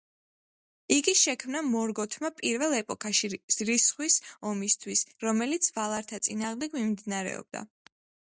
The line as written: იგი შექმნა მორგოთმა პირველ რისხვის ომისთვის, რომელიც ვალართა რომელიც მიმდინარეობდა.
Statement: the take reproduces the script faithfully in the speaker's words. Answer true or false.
false